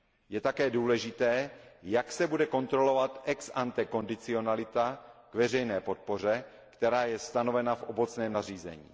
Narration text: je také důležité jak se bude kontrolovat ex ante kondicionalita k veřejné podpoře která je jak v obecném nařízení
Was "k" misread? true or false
false